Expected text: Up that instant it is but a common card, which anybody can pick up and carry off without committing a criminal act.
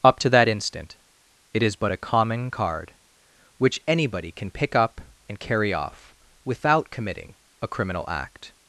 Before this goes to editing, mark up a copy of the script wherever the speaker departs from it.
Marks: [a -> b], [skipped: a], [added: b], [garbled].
Up [added: to] that instant it is but a common card, which anybody can pick up and carry off without committing a criminal act.